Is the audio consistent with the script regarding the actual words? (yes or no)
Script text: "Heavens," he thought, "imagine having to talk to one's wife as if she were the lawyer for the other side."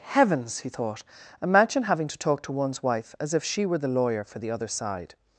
yes